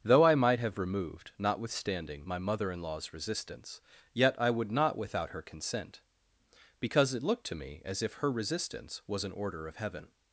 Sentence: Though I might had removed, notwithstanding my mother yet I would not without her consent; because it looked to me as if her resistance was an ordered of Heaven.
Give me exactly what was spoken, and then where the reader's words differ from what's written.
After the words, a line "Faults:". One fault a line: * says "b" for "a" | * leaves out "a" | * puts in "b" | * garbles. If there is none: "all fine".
Though I might have removed, notwithstanding my mother in law's resistance, yet I would not without her consent; because it looked to me as if her resistance was an order of Heaven.
Faults:
* says "have" for "had"
* puts in "in law's resistance"
* says "order" for "ordered"